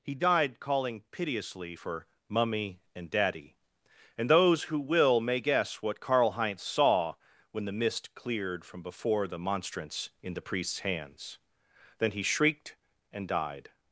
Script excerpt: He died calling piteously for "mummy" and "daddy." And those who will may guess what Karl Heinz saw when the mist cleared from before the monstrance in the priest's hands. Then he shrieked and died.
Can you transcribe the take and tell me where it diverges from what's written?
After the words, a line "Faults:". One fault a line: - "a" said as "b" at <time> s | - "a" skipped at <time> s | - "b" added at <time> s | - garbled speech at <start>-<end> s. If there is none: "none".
He died calling piteously for "mummy" and "daddy." And those who will may guess what Karl Heinz saw when the mist cleared from before the monstrance in the priest's hands. Then he shrieked and died.
Faults:
none